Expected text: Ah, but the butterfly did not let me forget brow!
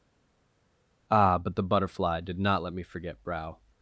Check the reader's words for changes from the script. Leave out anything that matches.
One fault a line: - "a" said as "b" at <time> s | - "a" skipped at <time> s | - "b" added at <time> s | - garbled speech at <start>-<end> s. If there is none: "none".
none